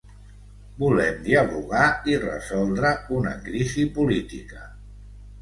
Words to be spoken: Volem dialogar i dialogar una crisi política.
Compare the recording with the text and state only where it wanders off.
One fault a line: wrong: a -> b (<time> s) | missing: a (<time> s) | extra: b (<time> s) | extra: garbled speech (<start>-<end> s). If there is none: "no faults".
wrong: dialogar -> resoldre (2.2 s)